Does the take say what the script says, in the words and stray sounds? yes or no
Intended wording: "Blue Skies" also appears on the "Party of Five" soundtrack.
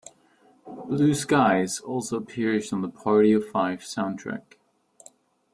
yes